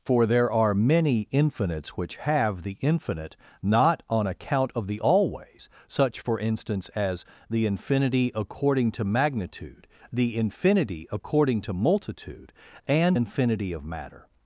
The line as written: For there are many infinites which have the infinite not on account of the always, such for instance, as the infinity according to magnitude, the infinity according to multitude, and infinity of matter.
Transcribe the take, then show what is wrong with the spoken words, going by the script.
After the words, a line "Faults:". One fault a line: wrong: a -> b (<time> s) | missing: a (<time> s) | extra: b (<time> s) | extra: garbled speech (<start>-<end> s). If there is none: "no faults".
For there are many infinites which have the infinite not on account of the always, such for instance, as the infinity according to magnitude, the infinity according to multitude, and infinity of matter.
Faults:
no faults